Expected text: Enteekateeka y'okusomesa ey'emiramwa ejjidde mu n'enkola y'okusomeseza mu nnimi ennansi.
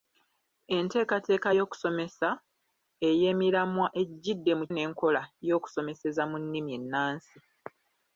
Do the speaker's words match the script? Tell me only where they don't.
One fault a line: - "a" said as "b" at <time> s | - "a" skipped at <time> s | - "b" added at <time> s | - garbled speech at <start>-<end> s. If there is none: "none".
none